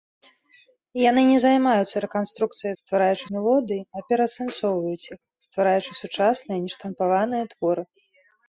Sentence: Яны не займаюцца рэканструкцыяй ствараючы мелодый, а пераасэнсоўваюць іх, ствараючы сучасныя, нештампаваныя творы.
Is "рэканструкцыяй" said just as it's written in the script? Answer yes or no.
yes